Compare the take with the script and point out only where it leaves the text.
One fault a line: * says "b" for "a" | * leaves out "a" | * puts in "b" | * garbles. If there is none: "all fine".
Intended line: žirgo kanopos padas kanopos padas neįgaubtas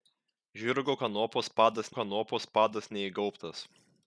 all fine